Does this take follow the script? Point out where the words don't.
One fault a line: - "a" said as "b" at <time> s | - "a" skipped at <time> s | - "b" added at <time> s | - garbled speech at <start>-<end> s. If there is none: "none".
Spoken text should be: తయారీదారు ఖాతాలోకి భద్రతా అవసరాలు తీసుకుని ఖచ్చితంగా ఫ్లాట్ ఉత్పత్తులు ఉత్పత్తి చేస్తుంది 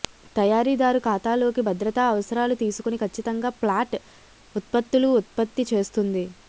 none